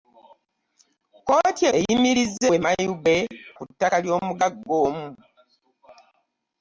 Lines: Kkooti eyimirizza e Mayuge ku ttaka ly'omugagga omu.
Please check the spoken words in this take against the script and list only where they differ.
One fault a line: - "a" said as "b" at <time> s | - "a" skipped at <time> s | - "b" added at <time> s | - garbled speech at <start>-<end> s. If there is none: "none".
none